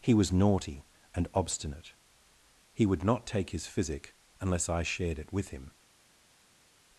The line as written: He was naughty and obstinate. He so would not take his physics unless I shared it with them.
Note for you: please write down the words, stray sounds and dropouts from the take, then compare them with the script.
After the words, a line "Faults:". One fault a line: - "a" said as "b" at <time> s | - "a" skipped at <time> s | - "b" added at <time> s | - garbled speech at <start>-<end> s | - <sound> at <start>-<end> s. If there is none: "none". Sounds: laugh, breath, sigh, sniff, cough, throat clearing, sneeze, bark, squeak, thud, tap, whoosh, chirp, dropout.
He was naughty and obstinate. He would not take his physic unless I shared it with him.
Faults:
- "so" skipped at 2.9 s
- "physics" said as "physic" at 3.7 s
- "them" said as "him" at 5.5 s